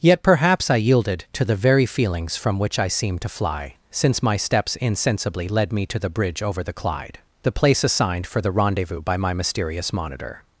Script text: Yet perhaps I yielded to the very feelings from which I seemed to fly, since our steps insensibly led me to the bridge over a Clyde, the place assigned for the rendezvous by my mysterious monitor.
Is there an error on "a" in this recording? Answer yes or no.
yes